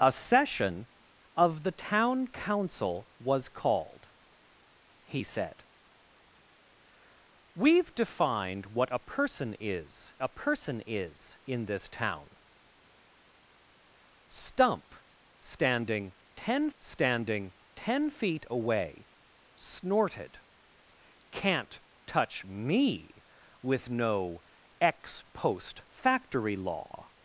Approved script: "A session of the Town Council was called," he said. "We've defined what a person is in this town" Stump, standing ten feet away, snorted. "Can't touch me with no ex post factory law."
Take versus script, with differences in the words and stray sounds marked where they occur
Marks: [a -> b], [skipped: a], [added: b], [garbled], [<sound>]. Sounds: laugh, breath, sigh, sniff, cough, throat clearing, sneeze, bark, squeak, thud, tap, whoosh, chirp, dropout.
"A session of the Town Council was called," he said. "We've defined what a person is [added: a person is] in this town" Stump, standing ten [added: standing ten] feet away, snorted. "Can't touch me with no ex post factory law."